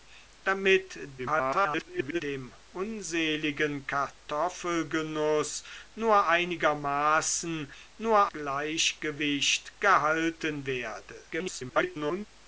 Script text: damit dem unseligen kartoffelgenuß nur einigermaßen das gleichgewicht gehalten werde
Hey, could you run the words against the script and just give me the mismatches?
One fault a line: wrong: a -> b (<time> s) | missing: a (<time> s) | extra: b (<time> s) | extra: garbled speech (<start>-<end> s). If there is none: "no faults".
extra: garbled speech (1.2-2.2 s)
wrong: das -> nur (8.0 s)
extra: garbled speech (11.3-12.3 s)